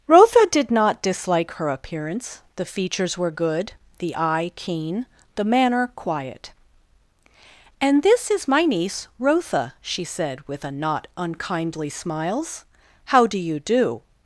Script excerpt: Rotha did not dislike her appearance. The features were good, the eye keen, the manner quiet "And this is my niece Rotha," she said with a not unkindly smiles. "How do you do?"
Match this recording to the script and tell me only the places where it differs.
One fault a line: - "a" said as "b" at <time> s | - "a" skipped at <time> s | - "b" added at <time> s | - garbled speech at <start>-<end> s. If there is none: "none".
none